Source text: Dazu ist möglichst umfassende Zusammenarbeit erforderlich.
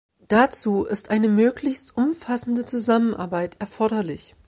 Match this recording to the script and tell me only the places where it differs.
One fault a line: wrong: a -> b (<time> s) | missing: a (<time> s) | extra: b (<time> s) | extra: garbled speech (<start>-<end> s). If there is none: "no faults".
extra: eine (1.1 s)